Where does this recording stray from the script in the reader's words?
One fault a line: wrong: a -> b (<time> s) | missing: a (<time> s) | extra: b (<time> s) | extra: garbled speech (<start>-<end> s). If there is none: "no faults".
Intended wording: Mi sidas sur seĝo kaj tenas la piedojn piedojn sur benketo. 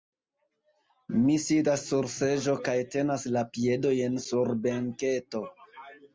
missing: piedojn (4.2 s)